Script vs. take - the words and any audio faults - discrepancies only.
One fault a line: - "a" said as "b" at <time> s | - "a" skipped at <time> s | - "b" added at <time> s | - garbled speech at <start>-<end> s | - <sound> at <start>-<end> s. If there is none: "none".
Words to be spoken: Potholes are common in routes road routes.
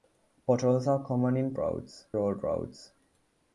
none